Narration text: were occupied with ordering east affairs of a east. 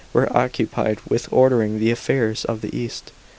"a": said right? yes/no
no